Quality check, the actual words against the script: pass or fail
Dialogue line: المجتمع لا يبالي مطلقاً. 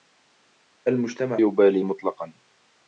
fail